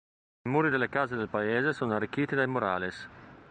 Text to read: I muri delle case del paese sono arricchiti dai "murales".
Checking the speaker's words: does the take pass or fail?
pass